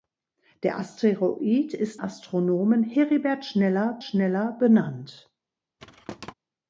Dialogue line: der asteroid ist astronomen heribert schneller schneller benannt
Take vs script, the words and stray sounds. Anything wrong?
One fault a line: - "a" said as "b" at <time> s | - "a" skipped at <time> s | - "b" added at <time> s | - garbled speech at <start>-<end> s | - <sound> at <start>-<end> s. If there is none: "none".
- thud at 5.8-6.3 s